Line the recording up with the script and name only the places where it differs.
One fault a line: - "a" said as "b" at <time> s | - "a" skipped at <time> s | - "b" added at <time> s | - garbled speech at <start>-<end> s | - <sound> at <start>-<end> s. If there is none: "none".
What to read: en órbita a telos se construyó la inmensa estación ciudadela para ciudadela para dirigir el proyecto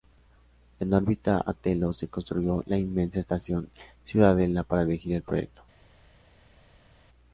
- "ciudadela para" skipped at 4.8 s